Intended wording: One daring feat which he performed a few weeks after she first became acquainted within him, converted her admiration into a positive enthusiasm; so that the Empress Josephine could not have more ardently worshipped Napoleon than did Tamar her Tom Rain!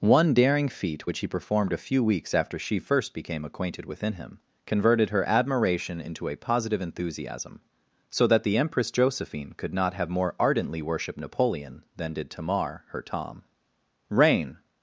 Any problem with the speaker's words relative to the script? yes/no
no